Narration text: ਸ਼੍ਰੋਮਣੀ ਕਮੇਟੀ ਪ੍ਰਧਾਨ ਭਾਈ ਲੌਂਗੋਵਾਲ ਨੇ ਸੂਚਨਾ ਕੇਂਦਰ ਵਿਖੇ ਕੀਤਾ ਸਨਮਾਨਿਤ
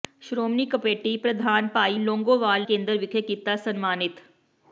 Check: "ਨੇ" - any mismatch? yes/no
yes